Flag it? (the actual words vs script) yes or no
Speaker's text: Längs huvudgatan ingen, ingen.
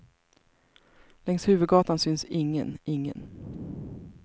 yes